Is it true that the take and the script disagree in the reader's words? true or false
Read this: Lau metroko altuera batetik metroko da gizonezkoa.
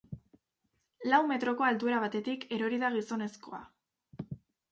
true